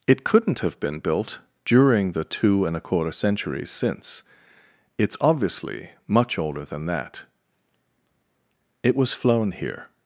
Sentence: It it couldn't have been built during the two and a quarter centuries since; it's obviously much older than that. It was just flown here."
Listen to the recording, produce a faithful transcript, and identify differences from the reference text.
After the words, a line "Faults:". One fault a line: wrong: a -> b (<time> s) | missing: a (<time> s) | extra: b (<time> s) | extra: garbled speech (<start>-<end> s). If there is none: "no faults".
It couldn't have been built during the two and a quarter centuries since; it's obviously much older than that. It was flown here."
Faults:
missing: it (0.2 s)
missing: just (9.1 s)